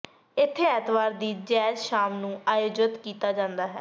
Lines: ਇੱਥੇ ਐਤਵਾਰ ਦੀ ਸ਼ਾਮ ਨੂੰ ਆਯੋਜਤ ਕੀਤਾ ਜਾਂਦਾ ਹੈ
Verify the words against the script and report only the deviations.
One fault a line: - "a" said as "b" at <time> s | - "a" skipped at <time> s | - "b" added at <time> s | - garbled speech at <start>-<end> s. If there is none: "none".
- "ਜੈਜ਼" added at 1.4 s